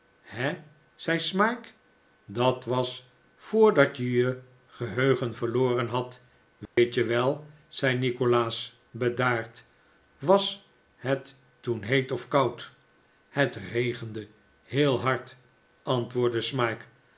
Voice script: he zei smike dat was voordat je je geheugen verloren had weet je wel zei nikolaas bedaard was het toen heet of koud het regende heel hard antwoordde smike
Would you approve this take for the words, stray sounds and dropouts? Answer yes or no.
no